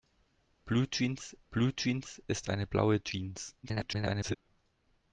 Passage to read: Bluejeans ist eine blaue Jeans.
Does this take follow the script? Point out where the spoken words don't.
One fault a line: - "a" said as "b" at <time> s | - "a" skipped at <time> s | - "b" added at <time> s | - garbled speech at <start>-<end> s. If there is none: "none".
- "bluejeans" added at 1.5 s
- garbled speech at 3.6-4.4 s